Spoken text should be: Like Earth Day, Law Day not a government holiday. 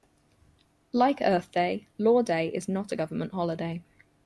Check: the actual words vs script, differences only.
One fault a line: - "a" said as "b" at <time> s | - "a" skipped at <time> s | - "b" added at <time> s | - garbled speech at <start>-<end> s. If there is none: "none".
- "is" added at 2.5 s